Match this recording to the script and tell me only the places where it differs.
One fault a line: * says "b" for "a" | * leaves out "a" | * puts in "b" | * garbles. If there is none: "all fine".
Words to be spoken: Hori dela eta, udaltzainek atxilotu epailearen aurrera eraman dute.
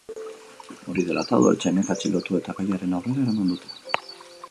* puts in "eta"